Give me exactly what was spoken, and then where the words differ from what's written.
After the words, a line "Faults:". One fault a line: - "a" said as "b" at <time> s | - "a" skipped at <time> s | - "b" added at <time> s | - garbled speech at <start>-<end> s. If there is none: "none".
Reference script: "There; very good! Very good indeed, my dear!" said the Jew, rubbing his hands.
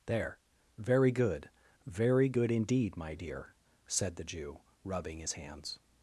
"There; very good! Very good indeed, my dear!" said the Jew, rubbing his hands.
Faults:
none